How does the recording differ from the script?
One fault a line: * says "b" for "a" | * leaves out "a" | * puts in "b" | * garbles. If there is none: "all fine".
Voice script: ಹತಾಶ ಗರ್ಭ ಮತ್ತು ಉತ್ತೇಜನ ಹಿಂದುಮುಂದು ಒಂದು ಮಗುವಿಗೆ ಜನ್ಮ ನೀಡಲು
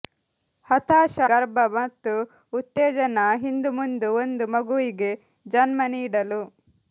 all fine